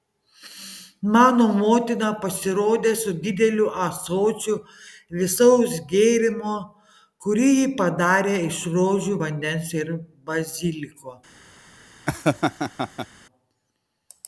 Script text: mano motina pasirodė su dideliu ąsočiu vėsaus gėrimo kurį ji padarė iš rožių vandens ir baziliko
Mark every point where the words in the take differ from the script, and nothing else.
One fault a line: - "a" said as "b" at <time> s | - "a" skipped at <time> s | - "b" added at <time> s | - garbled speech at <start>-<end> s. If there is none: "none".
none